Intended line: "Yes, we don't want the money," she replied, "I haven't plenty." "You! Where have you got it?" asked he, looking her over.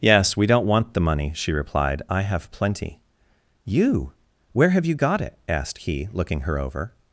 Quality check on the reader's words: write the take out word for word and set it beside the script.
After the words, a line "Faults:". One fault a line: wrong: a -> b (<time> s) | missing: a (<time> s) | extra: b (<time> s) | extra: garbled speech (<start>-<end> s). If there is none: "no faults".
"Yes, we don't want the money," she replied, "I have plenty." "You! Where have you got it?" asked he, looking her over.
Faults:
wrong: haven't -> have (2.2 s)